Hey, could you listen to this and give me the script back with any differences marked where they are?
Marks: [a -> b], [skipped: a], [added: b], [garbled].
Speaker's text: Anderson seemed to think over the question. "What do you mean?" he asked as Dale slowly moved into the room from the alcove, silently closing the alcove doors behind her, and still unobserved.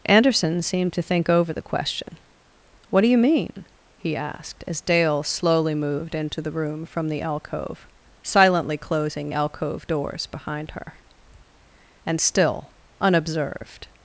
Anderson seemed to think over the question. "What do you mean?" he asked as Dale slowly moved into the room from the alcove, silently closing [skipped: the] alcove doors behind her, and still unobserved.